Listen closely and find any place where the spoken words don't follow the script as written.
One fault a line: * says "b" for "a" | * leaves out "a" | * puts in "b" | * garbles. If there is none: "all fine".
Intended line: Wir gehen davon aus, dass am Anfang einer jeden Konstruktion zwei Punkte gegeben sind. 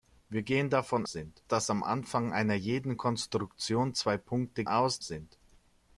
* says "sind" for "aus"
* says "aus" for "gegeben"